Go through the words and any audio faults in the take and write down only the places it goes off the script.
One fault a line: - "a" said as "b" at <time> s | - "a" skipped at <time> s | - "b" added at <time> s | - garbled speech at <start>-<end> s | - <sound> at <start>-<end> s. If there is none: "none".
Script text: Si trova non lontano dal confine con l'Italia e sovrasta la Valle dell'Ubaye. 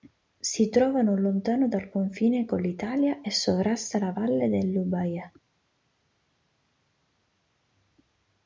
none